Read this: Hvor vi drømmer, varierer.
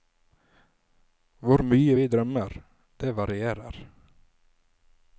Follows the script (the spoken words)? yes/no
no